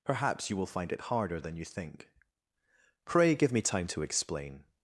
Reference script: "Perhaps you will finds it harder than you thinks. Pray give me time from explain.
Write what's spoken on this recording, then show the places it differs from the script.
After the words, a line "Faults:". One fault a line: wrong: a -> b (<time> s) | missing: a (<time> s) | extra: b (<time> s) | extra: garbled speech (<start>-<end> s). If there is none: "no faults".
"Perhaps you will find it harder than you think. Pray give me time to explain.
Faults:
wrong: finds -> find (0.7 s)
wrong: thinks -> think (1.6 s)
wrong: from -> to (3.9 s)